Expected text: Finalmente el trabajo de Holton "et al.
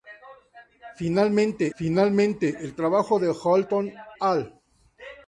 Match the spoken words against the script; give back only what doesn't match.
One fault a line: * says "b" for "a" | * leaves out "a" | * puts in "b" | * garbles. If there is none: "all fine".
* puts in "finalmente"
* leaves out "et"